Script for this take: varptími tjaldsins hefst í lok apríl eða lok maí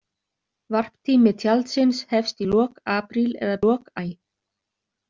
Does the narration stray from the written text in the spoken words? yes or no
no